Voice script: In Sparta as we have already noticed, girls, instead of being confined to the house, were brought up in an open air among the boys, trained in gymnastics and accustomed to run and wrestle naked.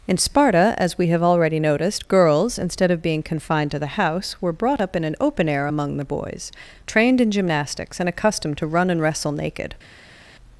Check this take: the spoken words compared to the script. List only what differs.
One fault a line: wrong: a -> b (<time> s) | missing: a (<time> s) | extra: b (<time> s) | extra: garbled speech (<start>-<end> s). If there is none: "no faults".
no faults